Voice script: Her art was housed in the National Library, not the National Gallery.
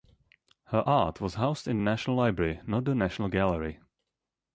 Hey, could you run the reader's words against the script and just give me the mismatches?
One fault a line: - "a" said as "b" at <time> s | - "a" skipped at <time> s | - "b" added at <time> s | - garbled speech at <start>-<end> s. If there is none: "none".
none